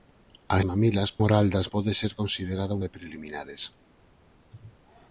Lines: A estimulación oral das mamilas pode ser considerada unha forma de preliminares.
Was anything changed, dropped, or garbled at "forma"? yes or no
yes